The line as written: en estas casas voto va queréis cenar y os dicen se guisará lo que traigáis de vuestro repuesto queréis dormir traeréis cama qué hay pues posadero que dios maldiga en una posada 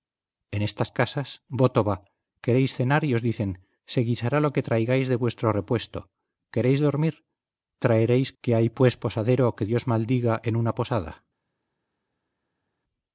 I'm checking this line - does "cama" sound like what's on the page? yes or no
no